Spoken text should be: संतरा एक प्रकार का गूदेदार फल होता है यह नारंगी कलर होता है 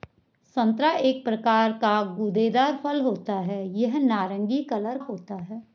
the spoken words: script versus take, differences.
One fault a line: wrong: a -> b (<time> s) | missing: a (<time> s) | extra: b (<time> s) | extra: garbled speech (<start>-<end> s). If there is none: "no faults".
no faults